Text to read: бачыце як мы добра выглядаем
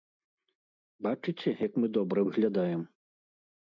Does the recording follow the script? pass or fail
pass